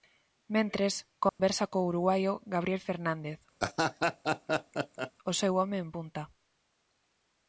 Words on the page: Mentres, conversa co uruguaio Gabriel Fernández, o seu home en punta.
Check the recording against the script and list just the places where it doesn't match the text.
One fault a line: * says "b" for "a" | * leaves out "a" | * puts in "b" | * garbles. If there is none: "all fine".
all fine